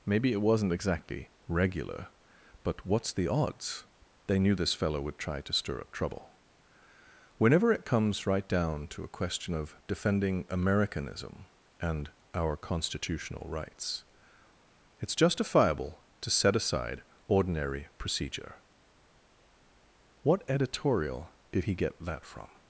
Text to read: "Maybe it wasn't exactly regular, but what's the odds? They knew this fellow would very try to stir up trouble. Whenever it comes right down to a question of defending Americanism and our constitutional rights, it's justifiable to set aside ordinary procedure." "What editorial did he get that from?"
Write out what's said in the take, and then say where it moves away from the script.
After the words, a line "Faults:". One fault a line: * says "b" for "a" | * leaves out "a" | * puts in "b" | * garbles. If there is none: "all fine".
"Maybe it wasn't exactly regular, but what's the odds? They knew this fellow would try to stir up trouble. Whenever it comes right down to a question of defending Americanism and our constitutional rights, it's justifiable to set aside ordinary procedure." "What editorial did he get that from?"
Faults:
* leaves out "very"